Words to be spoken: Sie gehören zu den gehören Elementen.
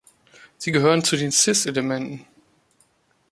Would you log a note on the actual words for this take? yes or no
yes